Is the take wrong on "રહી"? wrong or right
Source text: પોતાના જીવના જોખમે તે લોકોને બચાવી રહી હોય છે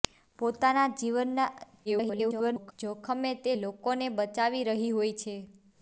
right